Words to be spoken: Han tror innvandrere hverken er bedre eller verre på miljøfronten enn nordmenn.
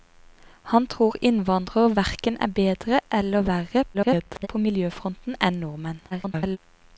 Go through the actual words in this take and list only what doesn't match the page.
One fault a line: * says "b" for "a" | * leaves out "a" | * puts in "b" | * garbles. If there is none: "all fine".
* garbles
* garbles